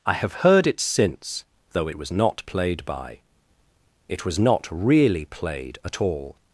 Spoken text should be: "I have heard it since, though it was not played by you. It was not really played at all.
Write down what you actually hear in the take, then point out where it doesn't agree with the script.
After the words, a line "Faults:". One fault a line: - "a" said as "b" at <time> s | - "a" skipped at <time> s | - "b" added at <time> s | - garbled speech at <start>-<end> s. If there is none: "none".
"I have heard it since, though it was not played by. It was not really played at all.
Faults:
- "you" skipped at 3.2 s